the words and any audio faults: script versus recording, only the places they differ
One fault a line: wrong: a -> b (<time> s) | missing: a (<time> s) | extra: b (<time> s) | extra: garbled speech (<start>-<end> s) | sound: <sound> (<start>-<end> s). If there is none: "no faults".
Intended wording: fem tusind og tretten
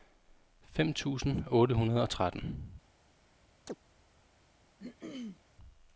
extra: otte hundrede (1.5 s)
sound: chirp (3.7-3.8 s)
sound: throat clearing (4.8-5.4 s)